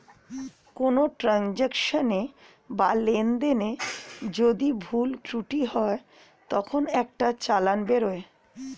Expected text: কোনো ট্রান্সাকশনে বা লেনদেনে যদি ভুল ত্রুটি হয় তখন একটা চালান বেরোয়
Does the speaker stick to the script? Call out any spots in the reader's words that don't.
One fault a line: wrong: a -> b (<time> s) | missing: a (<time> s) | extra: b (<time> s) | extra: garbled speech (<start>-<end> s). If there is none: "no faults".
no faults